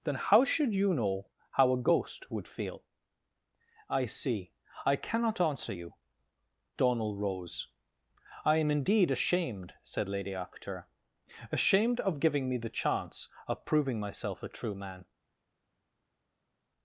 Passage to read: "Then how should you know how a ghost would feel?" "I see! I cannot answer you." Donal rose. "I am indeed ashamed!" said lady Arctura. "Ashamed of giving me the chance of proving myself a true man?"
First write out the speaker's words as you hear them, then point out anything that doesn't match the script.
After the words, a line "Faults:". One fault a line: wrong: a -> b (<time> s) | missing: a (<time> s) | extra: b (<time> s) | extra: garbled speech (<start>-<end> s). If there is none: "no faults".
"Then how should you know how a ghost would feel?" "I see! I cannot answer you." Donal rose. "I am indeed ashamed!" said lady Arctura. "Ashamed of giving me the chance of proving myself a true man?"
Faults:
no faults